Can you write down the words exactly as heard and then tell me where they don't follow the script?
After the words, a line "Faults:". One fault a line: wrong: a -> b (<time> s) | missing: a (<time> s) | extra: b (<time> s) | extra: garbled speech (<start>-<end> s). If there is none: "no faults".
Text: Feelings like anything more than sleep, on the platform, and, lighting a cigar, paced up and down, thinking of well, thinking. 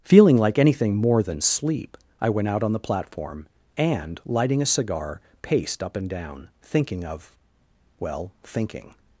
Feeling like anything more than sleep, I went out on the platform, and, lighting a cigar, paced up and down, thinking of well, thinking.
Faults:
wrong: Feelings -> Feeling (0.0 s)
extra: I went out (2.2 s)